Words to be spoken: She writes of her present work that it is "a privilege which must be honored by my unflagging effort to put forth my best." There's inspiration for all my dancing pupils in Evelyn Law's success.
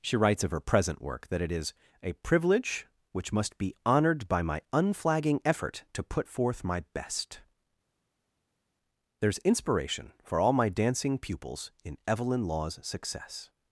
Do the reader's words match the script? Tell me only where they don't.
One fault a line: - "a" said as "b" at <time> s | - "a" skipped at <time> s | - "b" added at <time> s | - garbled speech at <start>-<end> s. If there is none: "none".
none